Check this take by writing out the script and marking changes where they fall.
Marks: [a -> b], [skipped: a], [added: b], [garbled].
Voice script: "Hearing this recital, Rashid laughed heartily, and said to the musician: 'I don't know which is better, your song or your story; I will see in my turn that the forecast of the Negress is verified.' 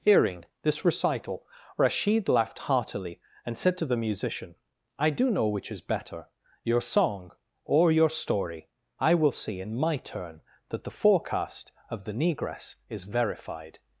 "Hearing this recital, Rashid laughed heartily, and said to the musician: 'I [don't -> do] know which is better, your song or your story; I will see in my turn that the forecast of the Negress is verified.'